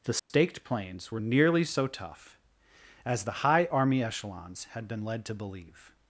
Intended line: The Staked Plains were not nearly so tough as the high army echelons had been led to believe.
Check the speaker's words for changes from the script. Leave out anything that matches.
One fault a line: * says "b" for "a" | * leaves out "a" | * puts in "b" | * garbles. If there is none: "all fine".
* leaves out "not"